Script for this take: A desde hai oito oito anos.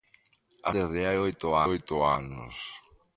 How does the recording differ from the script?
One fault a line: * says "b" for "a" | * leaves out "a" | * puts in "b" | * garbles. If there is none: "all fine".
all fine